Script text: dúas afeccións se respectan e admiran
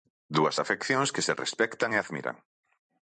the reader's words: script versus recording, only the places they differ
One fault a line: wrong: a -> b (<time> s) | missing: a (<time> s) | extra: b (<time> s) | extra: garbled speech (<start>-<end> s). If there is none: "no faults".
extra: que (1.1 s)